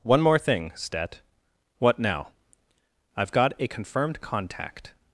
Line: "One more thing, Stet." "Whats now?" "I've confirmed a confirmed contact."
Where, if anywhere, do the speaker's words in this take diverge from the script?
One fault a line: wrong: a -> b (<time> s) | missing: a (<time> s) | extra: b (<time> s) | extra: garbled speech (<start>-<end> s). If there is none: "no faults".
wrong: Whats -> What (1.8 s)
wrong: confirmed -> got (3.3 s)